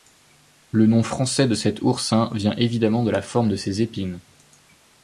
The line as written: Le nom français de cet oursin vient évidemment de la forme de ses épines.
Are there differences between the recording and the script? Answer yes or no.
no